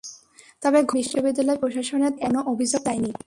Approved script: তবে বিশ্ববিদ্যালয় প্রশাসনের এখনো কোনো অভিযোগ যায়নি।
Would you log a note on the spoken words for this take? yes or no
no